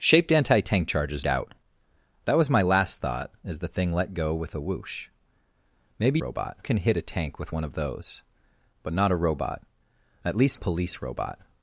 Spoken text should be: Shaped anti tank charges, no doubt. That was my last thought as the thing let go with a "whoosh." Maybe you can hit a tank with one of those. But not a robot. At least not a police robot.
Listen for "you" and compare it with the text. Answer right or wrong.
wrong